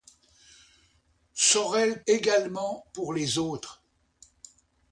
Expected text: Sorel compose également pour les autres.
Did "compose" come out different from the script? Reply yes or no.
yes